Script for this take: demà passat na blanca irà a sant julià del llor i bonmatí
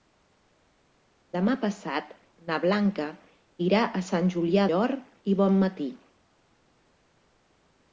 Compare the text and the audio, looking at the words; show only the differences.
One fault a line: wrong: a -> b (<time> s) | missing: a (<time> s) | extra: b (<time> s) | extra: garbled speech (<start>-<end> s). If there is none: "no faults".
missing: del (4.6 s)